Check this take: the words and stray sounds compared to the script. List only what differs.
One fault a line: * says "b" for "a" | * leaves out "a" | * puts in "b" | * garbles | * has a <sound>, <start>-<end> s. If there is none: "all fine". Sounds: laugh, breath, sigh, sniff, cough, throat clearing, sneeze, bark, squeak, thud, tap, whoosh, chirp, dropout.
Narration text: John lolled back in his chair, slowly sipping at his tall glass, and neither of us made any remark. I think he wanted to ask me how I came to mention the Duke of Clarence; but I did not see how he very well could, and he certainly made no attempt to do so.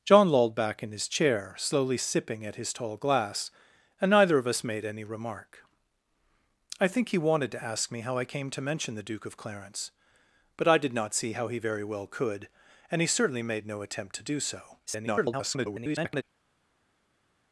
* garbles